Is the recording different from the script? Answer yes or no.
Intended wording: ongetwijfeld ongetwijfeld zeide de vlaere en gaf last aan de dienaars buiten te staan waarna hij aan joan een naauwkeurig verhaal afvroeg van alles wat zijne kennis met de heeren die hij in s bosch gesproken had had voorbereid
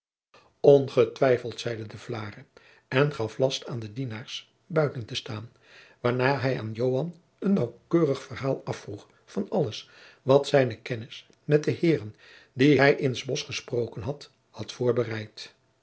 yes